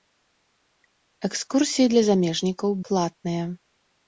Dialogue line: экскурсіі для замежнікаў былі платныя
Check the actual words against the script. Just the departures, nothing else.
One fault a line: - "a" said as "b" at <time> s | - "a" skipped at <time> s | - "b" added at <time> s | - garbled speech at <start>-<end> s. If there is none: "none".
- "былі" skipped at 2.7 s